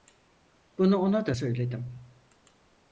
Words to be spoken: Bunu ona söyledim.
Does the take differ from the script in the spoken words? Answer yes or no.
yes